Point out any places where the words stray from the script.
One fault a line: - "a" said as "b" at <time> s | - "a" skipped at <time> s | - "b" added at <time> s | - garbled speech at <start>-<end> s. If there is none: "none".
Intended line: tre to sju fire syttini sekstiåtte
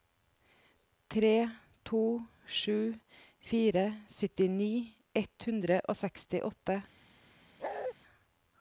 - "ett hundre og" added at 5.2 s